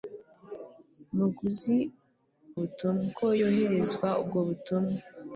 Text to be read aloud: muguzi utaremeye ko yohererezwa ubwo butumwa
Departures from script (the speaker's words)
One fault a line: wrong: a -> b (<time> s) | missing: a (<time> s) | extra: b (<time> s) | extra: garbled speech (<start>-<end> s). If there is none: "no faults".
wrong: utaremeye -> butumwa (2.6 s)